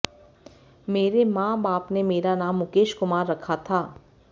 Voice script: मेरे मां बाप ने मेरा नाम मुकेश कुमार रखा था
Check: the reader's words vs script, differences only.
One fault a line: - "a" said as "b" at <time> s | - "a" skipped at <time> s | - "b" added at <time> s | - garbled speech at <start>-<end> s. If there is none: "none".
none